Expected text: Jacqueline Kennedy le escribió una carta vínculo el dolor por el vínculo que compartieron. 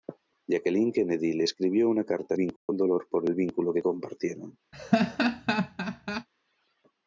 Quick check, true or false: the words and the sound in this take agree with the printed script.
false